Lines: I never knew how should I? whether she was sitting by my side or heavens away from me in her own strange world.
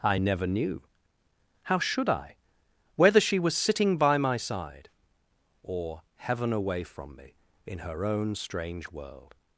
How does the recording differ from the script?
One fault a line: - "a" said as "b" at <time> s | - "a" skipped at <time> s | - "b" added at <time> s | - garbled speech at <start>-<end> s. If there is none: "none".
- "heavens" said as "heaven" at 6.2 s